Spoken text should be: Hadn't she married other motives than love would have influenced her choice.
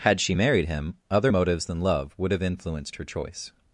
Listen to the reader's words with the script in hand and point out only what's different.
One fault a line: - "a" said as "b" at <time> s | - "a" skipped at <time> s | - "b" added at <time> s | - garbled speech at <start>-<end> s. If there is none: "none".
- "Hadn't" said as "Had" at 0.0 s
- "him" added at 0.7 s